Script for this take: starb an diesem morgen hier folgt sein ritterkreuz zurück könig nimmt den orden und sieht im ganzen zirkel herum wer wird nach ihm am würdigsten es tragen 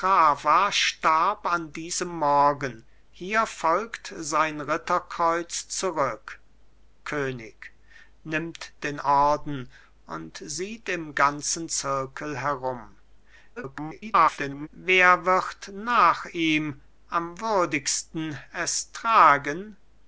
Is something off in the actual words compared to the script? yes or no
yes